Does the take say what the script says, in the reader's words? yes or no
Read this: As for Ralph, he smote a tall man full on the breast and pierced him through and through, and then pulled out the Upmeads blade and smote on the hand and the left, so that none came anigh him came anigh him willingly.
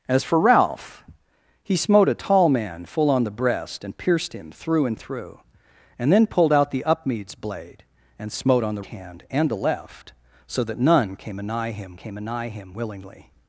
yes